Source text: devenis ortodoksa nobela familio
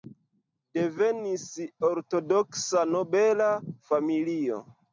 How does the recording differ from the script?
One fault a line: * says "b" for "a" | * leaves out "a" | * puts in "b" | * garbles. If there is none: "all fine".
all fine